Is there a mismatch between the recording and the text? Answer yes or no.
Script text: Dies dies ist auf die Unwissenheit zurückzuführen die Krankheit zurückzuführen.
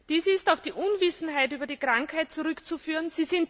yes